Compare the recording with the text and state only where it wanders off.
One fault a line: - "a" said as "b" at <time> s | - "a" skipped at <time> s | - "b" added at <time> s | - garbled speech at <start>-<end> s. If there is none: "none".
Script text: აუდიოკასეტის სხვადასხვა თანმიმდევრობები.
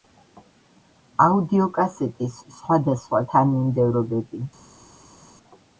none